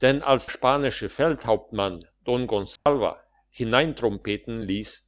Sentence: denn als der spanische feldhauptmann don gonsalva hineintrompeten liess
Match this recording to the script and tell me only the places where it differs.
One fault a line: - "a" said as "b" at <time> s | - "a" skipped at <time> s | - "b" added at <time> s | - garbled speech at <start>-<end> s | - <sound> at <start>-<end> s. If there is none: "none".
- "der" skipped at 0.5 s
- dropout at 2.8-2.9 s